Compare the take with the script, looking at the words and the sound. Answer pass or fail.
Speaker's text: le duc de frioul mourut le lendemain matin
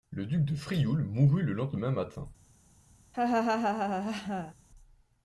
fail